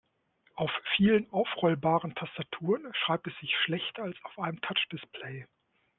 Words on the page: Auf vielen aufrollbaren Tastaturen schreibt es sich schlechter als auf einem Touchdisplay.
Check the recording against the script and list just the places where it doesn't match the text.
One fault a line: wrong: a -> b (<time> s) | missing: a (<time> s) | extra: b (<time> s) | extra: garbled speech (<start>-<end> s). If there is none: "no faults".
no faults